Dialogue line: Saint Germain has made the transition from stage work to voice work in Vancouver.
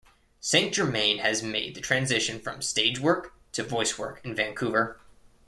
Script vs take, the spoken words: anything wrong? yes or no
no